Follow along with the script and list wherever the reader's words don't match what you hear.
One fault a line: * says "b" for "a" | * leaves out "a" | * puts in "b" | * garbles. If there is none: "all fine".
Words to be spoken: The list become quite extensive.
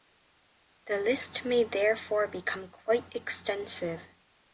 * puts in "may therefore"